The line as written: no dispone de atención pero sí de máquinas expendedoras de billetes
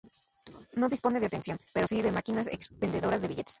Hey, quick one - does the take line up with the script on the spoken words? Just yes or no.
yes